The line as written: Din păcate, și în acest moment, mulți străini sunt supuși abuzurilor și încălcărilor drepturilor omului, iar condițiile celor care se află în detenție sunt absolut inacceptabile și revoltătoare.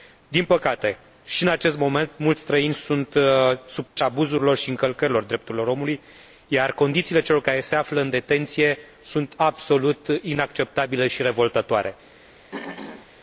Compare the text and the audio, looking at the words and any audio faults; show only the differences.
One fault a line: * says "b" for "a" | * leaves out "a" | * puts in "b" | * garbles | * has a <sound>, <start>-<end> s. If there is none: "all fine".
* has a dropout, 3.9-4.0 s
* has a throat clearing, 12.5-13.1 s